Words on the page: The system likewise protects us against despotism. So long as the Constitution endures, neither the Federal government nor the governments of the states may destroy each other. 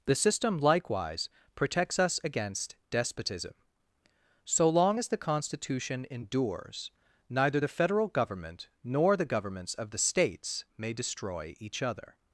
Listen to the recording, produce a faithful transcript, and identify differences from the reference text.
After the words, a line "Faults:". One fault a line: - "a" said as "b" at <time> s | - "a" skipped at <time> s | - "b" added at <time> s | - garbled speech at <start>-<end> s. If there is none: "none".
The system likewise protects us against despotism. So long as the Constitution endures, neither the Federal government nor the governments of the states may destroy each other.
Faults:
none